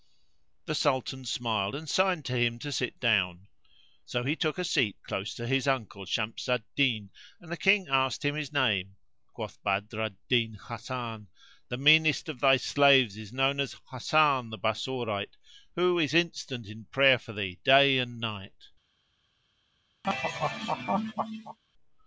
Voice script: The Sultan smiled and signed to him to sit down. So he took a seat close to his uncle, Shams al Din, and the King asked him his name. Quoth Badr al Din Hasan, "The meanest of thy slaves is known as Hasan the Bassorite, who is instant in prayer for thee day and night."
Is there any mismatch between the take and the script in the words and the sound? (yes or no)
yes